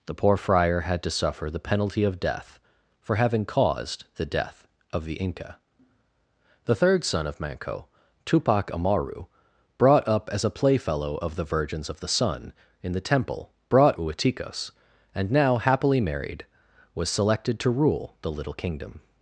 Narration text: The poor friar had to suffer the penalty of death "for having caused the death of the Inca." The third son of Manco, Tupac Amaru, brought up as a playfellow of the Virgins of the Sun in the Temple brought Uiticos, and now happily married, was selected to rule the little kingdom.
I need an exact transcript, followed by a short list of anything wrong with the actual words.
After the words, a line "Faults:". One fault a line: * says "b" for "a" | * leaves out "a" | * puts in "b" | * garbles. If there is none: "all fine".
The poor friar had to suffer the penalty of death "for having caused the death of the Inca." The third son of Manco, Tupac Amaru, brought up as a playfellow of the Virgins of the Sun in the Temple brought Uiticos, and now happily married, was selected to rule the little kingdom.
Faults:
all fine